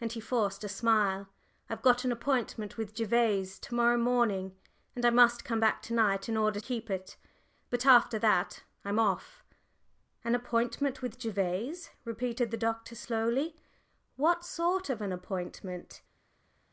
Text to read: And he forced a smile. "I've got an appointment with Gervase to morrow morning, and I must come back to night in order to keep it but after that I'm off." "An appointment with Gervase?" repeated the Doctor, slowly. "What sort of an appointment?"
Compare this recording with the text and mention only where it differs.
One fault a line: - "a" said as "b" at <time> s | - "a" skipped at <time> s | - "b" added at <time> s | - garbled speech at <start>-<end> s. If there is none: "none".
- "to" skipped at 6.6 s